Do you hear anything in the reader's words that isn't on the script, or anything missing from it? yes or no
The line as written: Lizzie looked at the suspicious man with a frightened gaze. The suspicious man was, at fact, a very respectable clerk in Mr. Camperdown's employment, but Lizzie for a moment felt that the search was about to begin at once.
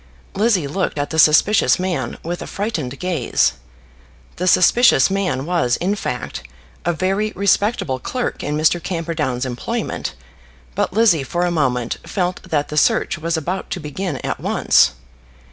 yes